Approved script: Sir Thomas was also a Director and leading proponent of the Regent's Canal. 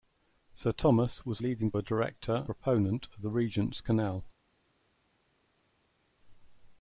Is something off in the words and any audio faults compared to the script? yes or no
yes